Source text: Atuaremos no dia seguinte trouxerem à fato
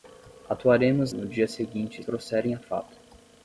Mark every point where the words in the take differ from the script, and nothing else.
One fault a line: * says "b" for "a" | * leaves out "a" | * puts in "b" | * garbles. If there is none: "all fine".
all fine